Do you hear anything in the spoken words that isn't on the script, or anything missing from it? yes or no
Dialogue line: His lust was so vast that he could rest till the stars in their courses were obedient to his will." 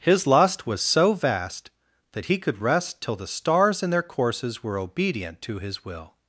no